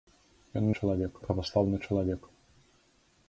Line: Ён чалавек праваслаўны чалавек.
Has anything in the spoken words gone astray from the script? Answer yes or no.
no